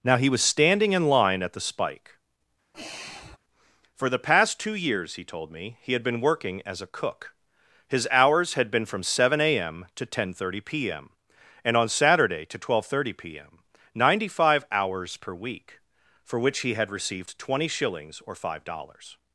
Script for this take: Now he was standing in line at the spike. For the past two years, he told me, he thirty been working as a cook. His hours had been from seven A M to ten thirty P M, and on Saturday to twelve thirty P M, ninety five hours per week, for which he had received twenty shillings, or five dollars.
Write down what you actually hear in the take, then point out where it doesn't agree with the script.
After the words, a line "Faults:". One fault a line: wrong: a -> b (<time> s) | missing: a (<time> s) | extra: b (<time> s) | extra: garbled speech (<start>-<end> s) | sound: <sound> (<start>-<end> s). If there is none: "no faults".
Now he was standing in line at the spike. For the past two years, he told me, he had been working as a cook. His hours had been from seven A M to ten thirty P M, and on Saturday to twelve thirty P M, ninety five hours per week, for which he had received twenty shillings, or five dollars.
Faults:
sound: sigh (2.7-3.4 s)
wrong: thirty -> had (5.9 s)